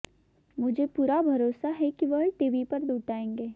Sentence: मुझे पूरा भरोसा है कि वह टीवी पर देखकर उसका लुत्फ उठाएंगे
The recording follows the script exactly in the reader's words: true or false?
false